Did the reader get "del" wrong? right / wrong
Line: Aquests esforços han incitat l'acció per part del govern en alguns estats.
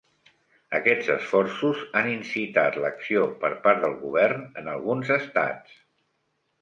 right